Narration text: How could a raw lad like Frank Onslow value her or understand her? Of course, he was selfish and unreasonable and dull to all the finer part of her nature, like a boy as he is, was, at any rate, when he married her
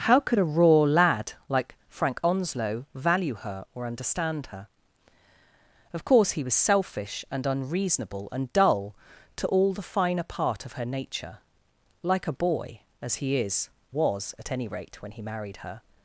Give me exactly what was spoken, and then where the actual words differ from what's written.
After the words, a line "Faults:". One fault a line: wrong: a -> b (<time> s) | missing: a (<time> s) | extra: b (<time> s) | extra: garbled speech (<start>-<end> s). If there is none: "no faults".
How could a raw lad like Frank Onslow value her or understand her? Of course, he was selfish and unreasonable and dull to all the finer part of her nature, like a boy as he is, was, at any rate, when he married her
Faults:
no faults